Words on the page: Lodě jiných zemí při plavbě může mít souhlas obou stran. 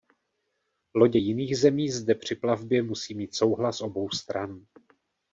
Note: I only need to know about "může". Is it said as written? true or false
false